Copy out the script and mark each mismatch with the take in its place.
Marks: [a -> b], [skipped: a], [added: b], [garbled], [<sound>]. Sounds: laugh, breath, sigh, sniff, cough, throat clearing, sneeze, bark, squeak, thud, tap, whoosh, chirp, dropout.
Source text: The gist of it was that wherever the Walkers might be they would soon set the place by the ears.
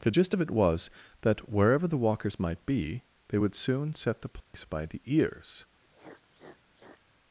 The gist of it was that wherever the Walkers might be they would soon set the place [dropout] by the ears. [sniff]